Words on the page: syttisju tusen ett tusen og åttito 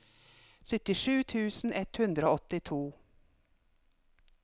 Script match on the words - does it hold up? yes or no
no